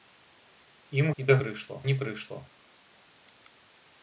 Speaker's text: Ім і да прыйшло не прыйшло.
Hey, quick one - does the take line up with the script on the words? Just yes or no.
yes